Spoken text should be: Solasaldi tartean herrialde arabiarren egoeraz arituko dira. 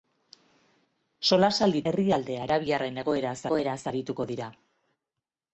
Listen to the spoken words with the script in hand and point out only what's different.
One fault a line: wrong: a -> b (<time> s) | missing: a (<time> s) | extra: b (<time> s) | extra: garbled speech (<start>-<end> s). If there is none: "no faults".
missing: tartean (1.8 s)
extra: egoeraz (3.5 s)